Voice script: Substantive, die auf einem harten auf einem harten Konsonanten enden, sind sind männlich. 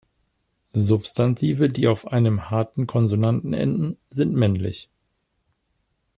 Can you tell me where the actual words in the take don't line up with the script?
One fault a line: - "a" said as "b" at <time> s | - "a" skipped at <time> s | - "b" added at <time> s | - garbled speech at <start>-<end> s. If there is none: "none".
- "auf einem harten" skipped at 2.9 s
- "sind" skipped at 4.3 s